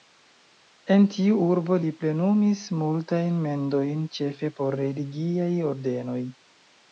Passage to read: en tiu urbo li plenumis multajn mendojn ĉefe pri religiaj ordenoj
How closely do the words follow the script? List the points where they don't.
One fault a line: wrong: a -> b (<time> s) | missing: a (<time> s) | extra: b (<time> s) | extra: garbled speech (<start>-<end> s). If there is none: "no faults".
wrong: pri -> por (4.6 s)